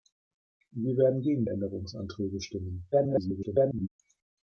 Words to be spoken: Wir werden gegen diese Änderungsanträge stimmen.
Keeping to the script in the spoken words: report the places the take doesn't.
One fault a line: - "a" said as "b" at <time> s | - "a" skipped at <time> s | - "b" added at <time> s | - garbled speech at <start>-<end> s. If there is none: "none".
- "diese" skipped at 1.4 s
- garbled speech at 2.9-3.9 s